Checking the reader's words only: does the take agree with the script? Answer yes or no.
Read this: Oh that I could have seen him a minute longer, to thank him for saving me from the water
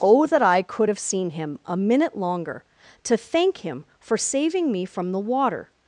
yes